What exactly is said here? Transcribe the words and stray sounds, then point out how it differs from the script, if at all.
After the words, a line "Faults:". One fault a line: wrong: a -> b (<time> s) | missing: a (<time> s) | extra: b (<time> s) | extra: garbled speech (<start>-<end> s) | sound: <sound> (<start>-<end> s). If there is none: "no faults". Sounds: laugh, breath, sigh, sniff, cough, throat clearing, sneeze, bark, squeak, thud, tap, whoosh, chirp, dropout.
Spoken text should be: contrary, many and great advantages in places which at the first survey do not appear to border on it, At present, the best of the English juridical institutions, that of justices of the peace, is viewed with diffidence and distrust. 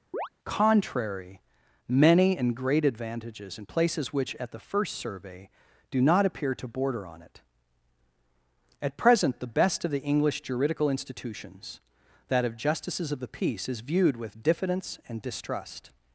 contrary, many and great advantages in places which at the first survey do not appear to border on it, At present, the best of the English juridical institutions, that of justices of the peace, is viewed with diffidence and distrust.
Faults:
sound: chirp (0.1-0.3 s)